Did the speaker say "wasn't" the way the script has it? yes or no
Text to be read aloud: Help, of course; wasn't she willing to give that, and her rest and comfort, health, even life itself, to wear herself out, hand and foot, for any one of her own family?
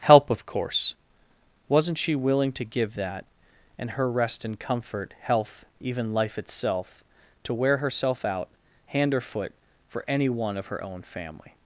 yes